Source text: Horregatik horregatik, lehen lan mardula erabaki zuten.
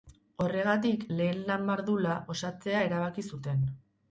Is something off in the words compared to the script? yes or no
yes